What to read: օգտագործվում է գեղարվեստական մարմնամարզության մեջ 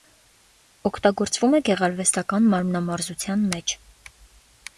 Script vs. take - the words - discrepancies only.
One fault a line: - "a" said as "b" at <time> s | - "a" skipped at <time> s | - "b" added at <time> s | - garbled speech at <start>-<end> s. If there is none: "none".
none